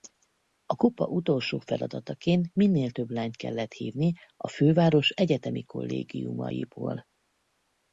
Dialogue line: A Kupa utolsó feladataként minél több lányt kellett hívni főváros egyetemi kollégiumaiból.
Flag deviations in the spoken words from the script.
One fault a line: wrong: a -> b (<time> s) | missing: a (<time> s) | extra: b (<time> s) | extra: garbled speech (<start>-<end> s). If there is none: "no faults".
extra: a (4.4 s)